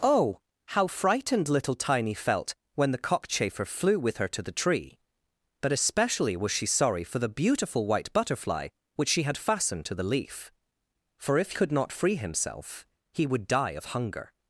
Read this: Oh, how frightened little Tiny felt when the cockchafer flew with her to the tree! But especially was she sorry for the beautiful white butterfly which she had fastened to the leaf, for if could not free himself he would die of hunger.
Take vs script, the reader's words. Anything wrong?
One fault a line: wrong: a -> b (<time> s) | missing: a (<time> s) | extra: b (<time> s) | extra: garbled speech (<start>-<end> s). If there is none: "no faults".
no faults